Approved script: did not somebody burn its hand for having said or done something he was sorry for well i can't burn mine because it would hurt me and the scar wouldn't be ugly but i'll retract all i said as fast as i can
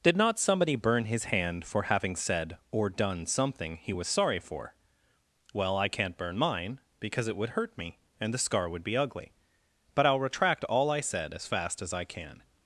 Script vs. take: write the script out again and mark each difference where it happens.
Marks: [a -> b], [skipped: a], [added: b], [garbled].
did not somebody burn [its -> his] hand for having said or done something he was sorry for well i can't burn mine because it would hurt me and the scar [wouldn't -> would] be ugly but i'll retract all i said as fast as i can